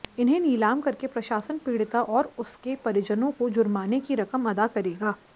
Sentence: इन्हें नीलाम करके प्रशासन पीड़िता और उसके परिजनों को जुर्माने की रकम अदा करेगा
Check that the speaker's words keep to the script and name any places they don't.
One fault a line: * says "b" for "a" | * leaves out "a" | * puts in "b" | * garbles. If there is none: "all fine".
all fine